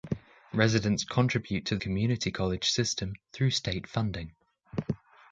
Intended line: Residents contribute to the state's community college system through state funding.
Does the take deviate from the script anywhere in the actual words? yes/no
yes